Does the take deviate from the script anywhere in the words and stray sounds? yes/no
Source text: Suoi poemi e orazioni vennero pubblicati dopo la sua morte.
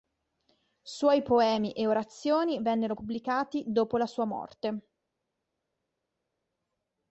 no